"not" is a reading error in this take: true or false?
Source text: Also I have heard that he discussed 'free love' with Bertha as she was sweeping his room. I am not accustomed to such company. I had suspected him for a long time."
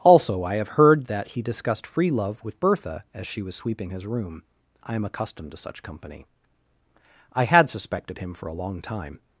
true